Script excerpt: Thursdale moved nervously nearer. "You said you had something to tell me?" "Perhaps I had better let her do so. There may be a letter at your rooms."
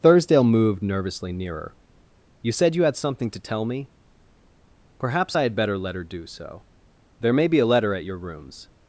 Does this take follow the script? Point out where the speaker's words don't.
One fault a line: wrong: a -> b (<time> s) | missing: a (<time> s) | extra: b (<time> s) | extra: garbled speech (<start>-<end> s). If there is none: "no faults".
no faults